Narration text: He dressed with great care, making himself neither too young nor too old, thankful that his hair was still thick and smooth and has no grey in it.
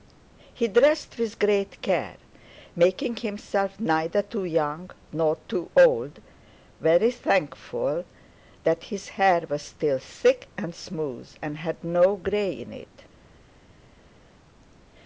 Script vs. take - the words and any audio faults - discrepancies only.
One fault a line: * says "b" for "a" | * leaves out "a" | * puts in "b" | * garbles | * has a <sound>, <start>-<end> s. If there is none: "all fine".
* puts in "very"
* says "had" for "has"